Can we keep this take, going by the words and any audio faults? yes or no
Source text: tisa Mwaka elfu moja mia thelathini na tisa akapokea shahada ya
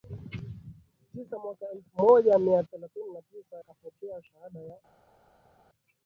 yes